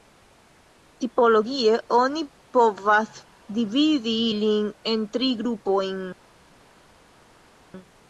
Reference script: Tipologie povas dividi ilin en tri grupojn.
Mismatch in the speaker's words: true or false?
true